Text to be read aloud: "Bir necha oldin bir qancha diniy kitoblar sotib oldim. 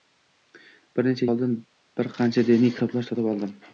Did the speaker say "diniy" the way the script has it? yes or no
yes